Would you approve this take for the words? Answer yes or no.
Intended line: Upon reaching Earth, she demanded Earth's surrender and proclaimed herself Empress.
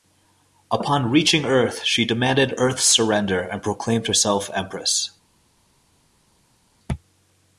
yes